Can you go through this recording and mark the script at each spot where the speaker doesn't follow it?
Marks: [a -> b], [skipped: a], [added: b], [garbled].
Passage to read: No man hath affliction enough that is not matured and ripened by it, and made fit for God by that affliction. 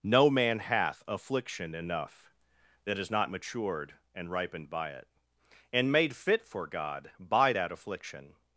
No man hath affliction enough that is not matured and ripened by it, and made fit for God by that affliction.